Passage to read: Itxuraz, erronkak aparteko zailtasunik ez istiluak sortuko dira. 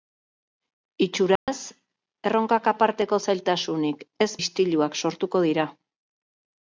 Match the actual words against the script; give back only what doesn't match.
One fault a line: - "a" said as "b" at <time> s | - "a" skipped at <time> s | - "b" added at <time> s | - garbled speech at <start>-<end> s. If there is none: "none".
none